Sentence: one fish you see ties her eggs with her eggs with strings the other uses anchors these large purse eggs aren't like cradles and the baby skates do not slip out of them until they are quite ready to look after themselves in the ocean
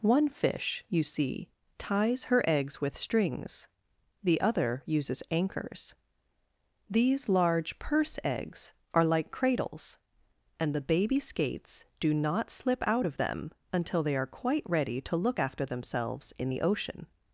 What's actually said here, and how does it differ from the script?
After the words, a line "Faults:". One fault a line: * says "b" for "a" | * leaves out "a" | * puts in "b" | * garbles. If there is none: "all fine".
one fish you see ties her eggs with strings the other uses anchors these large purse eggs are like cradles and the baby skates do not slip out of them until they are quite ready to look after themselves in the ocean
Faults:
* leaves out "her eggs with"
* says "are" for "aren't"